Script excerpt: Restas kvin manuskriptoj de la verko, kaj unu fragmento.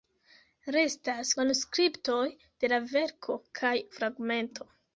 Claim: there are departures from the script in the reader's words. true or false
true